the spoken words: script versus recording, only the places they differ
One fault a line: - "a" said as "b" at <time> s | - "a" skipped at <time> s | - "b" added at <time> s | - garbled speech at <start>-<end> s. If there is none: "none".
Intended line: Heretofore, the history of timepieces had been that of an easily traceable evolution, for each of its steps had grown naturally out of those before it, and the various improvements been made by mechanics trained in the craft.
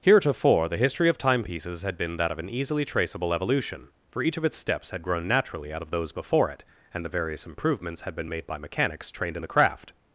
- "had" added at 8.0 s